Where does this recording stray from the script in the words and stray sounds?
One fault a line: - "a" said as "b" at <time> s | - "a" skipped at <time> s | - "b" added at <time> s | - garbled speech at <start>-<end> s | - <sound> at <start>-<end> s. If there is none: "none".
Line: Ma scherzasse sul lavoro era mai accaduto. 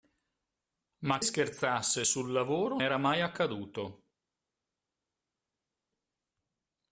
none